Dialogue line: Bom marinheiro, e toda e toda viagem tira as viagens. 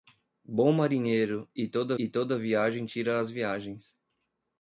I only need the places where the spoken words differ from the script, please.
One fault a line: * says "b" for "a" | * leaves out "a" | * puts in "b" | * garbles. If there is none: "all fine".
all fine